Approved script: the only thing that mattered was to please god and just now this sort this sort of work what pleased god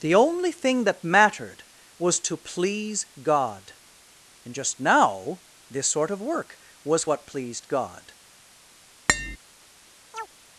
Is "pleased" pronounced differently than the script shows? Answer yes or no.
no